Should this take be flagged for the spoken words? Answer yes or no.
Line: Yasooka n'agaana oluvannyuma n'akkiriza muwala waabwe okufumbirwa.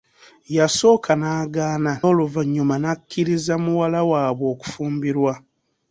no